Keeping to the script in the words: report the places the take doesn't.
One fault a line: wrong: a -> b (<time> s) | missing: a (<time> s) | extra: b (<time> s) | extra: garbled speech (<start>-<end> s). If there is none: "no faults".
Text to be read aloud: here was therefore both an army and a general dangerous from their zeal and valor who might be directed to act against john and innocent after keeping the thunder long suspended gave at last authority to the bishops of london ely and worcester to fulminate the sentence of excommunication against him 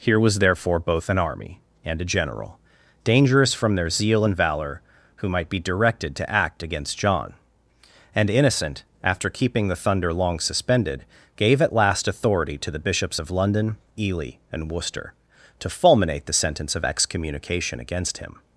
no faults